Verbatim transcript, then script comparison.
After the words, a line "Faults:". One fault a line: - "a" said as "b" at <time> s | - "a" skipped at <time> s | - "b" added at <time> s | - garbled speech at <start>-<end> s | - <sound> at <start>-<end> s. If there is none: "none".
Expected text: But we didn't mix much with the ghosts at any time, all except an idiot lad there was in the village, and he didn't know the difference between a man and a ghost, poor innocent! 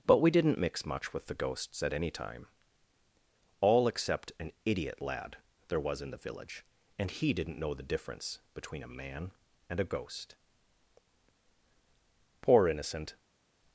But we didn't mix much with the ghosts at any time, all except an idiot lad there was in the village, and he didn't know the difference between a man and a ghost, poor innocent!
Faults:
none